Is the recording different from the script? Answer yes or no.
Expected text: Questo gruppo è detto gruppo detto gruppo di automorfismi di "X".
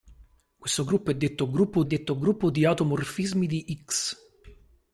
no